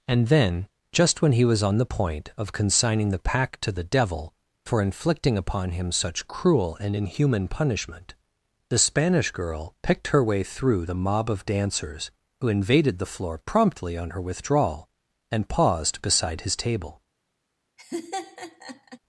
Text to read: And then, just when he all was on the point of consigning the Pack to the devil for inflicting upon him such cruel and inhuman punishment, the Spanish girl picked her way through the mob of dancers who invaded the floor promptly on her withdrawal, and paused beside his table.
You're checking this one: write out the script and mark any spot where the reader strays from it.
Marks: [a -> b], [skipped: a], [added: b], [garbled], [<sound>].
And then, just when he [skipped: all] was on the point of consigning the Pack to the devil for inflicting upon him such cruel and inhuman punishment, the Spanish girl picked her way through the mob of dancers who invaded the floor promptly on her withdrawal, and paused beside his table. [laugh]